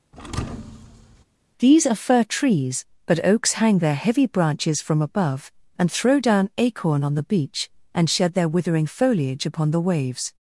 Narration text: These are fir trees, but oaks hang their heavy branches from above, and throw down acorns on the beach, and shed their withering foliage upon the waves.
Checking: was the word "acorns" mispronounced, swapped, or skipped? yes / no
yes